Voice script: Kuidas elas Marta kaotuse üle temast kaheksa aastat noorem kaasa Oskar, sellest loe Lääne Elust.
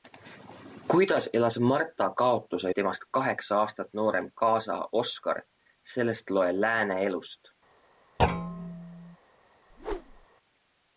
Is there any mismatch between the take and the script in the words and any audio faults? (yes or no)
yes